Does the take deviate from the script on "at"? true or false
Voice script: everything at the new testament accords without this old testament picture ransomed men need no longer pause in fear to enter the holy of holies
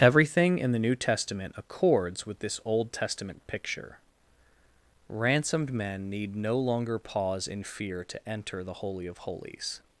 true